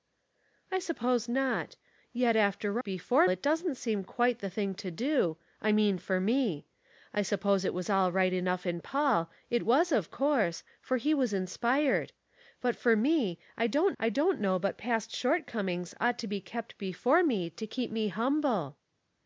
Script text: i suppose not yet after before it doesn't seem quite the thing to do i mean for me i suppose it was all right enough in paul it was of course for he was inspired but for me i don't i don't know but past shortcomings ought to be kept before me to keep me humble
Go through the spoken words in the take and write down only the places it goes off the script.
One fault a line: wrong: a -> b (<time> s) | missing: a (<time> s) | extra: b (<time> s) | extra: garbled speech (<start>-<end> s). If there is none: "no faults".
no faults